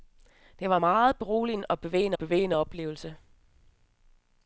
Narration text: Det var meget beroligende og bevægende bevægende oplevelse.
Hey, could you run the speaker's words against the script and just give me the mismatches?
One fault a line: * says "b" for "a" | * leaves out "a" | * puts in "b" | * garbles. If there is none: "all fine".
all fine